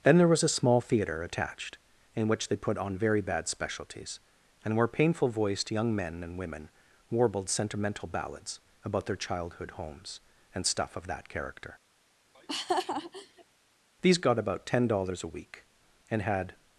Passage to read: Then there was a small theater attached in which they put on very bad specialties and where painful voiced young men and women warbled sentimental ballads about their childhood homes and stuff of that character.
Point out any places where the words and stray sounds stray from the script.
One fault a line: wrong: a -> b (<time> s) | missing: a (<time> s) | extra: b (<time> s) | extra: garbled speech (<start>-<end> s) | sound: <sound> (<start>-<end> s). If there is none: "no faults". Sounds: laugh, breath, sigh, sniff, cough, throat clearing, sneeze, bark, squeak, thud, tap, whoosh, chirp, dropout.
sound: laugh (12.3-13.4 s)
extra: These got about ten dollars a week and had (14.0 s)